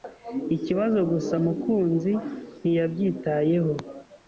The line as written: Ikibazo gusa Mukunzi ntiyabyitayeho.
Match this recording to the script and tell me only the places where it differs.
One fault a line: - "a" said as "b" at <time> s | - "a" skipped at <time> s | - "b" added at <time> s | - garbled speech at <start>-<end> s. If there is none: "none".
none